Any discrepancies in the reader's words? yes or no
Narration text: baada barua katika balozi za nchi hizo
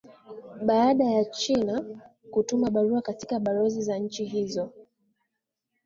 yes